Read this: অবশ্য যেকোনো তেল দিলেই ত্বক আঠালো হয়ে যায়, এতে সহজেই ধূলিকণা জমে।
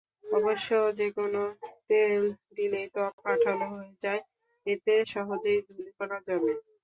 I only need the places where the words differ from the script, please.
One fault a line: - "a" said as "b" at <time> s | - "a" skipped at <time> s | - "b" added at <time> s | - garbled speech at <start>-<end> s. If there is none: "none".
none